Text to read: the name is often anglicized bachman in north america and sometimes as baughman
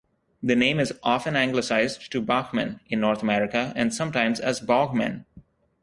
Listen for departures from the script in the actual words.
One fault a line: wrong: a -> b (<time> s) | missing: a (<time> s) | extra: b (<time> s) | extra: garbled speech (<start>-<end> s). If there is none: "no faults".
extra: to (2.1 s)